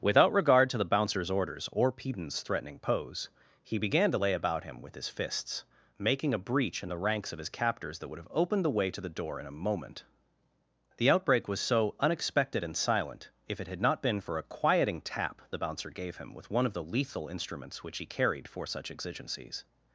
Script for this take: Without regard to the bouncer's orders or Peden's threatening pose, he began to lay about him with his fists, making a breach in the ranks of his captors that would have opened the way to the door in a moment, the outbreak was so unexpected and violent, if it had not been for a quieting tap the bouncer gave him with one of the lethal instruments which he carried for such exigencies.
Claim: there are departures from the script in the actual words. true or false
true